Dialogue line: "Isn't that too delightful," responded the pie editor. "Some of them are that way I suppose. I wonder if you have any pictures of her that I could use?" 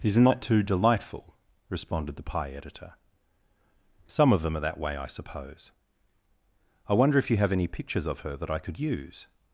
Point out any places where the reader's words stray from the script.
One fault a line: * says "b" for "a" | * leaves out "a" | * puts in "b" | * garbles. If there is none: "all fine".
all fine